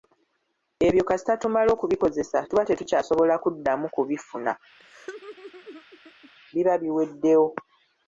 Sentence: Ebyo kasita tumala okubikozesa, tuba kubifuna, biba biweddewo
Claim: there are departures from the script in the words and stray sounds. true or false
true